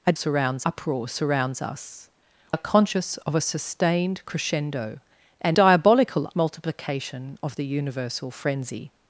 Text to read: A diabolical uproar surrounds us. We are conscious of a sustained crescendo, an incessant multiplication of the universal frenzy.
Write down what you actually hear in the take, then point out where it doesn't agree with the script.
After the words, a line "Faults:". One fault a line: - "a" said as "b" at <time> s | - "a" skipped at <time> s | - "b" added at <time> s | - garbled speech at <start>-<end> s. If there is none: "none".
A surrounds uproar surrounds us. Are conscious of a sustained crescendo, an diabolical multiplication of the universal frenzy.
Faults:
- "diabolical" said as "surrounds" at 0.1 s
- "We" skipped at 2.1 s
- "incessant" said as "diabolical" at 5.5 s